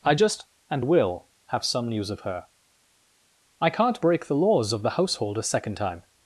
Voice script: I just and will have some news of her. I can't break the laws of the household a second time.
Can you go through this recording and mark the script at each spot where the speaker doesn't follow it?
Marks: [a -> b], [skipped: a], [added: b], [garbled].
I just and will have some news of her. I can't break the laws of the household a second time.